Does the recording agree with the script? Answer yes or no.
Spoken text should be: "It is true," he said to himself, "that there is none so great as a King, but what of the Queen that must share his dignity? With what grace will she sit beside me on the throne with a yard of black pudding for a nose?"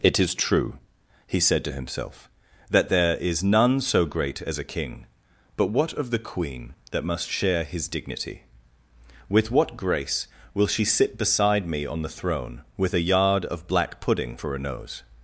yes